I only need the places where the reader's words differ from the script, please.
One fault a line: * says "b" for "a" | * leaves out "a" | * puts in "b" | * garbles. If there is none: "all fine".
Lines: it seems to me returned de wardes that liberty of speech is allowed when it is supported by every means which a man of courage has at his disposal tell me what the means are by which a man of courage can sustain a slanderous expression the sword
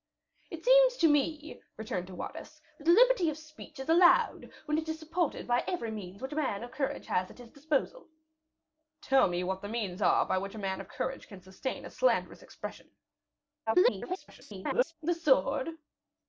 * garbles